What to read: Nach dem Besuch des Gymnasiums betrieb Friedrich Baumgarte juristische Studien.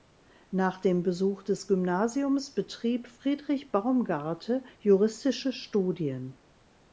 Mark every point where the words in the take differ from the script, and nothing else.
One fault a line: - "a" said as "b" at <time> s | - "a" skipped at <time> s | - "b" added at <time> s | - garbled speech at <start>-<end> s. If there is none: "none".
none